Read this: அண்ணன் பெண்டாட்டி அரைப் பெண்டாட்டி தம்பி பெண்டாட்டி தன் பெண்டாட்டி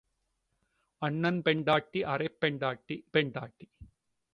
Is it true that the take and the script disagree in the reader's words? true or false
true